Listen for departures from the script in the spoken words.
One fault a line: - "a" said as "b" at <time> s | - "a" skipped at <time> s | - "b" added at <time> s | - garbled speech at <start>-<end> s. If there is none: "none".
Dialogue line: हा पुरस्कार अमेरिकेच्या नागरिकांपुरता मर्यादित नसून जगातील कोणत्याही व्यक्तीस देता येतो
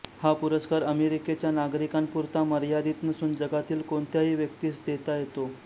none